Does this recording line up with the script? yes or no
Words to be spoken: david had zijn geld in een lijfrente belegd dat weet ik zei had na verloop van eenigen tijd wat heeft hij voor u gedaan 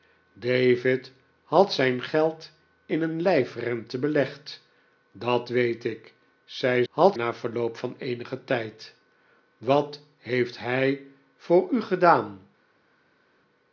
yes